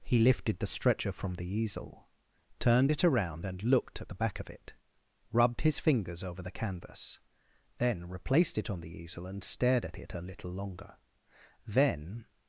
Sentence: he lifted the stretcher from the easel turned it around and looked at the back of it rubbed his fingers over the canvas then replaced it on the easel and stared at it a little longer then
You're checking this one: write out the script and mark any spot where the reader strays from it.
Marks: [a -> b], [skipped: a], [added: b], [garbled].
he lifted the stretcher from the easel turned it around and looked at the back of it rubbed his fingers over the canvas then replaced it on the easel and stared at it a little longer then